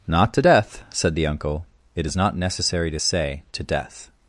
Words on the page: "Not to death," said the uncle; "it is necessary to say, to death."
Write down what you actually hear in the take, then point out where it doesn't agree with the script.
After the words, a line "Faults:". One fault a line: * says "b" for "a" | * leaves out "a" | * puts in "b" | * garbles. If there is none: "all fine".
"Not to death," said the uncle; "it is not necessary to say, to death."
Faults:
* puts in "not"